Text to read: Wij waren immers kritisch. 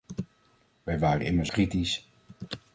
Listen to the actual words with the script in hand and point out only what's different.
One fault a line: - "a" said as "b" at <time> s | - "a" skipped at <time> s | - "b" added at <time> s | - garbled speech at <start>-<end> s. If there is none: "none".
none